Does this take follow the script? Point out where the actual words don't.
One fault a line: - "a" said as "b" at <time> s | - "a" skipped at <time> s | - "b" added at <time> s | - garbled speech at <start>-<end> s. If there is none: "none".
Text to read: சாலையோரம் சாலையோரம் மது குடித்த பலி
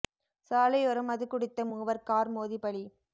- "சாலையோரம்" skipped at 1.1 s
- "மூவர் கார் மோதி" added at 1.7 s